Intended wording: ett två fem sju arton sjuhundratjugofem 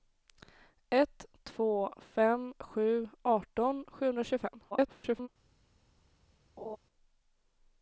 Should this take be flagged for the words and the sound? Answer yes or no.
yes